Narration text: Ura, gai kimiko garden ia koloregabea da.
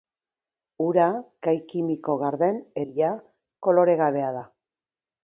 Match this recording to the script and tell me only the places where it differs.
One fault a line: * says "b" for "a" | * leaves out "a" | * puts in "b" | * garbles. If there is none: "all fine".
all fine